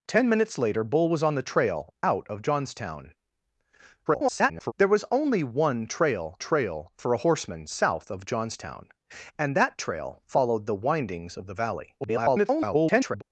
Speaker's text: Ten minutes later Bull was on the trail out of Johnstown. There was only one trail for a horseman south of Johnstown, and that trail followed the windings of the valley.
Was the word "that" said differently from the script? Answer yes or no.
no